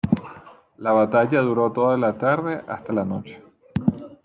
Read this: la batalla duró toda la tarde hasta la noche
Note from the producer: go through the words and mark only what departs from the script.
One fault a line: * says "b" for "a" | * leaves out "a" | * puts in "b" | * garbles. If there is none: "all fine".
all fine